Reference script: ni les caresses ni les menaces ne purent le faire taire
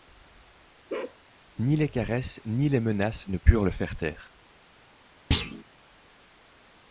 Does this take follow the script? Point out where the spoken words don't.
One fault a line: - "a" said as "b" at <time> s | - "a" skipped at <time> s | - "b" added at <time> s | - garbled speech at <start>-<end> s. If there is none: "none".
none